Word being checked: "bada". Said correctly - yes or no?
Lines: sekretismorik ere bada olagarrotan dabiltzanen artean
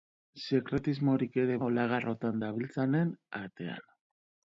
no